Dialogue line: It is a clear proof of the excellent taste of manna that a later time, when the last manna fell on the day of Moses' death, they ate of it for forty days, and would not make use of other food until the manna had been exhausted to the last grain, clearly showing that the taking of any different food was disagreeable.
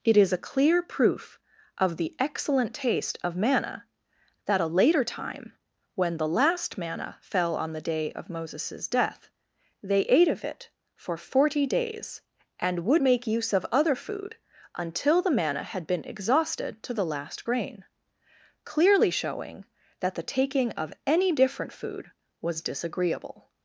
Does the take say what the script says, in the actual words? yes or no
no